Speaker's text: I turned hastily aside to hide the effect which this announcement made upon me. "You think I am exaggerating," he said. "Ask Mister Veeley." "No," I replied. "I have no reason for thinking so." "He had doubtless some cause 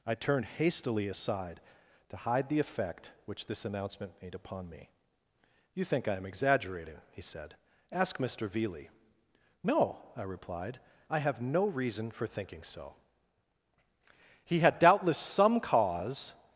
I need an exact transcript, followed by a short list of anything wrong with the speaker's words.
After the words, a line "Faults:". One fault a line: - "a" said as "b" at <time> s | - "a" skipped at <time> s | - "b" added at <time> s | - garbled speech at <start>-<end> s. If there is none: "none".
I turned hastily aside to hide the effect which this announcement made upon me. "You think I am exaggerating," he said. "Ask Mister Veeley." "No," I replied. "I have no reason for thinking so." "He had doubtless some cause
Faults:
none